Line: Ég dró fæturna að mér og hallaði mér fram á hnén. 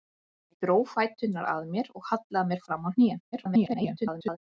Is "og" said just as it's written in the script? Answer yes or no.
yes